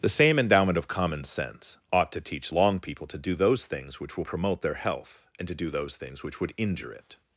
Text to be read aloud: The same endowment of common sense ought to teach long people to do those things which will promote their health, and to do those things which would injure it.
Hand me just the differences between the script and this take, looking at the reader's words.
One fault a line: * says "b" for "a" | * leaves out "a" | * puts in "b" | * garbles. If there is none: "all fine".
all fine